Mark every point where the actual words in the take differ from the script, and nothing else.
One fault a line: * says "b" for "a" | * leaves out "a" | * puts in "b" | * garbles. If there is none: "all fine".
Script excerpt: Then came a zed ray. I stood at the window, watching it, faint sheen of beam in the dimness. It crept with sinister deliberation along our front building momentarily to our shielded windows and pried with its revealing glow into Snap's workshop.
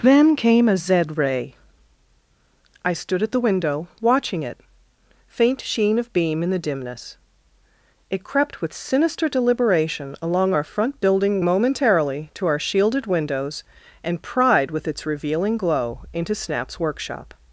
all fine